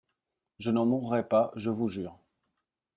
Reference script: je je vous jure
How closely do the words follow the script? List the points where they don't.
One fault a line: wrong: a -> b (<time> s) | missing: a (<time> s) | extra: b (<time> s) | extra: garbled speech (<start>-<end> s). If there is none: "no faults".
extra: n'en mourrai pas (0.7 s)